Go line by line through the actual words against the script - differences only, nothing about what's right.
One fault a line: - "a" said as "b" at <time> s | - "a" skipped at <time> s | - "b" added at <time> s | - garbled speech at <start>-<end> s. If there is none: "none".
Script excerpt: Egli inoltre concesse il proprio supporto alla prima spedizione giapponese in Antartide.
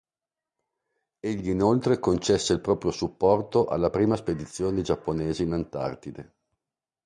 none